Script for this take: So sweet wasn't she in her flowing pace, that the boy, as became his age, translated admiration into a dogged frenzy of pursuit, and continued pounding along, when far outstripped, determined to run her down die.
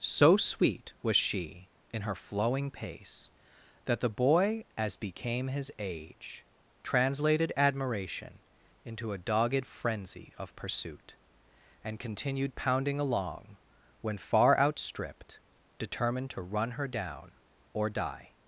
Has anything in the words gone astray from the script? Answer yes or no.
yes